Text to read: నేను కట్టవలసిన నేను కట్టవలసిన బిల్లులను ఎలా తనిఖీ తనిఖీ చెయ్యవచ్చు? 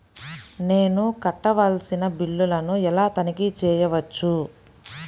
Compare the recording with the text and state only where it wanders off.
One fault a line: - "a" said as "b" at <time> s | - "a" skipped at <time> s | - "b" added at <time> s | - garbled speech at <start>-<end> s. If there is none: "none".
- "నేను కట్టవలసిన" skipped at 2.0 s
- "తనిఖీ" skipped at 3.5 s